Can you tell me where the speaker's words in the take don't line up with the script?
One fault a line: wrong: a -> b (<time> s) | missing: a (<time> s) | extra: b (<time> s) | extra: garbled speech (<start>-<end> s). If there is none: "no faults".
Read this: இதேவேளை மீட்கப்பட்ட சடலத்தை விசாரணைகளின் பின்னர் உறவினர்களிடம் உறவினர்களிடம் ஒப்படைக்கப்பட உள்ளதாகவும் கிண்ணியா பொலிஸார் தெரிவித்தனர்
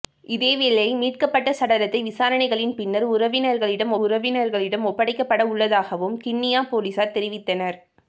no faults